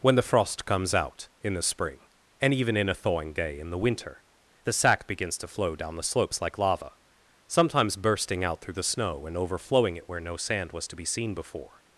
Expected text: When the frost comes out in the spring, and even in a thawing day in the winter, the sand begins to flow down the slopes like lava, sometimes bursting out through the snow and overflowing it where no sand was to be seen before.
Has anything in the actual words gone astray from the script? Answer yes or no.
yes